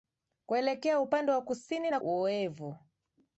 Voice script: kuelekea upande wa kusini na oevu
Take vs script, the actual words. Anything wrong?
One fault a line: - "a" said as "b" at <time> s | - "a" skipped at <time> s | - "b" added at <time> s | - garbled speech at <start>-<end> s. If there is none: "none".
none